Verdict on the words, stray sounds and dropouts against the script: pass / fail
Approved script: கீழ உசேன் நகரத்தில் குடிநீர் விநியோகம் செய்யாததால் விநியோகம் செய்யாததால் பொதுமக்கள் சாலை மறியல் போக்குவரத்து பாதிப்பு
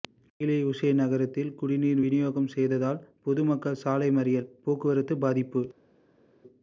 fail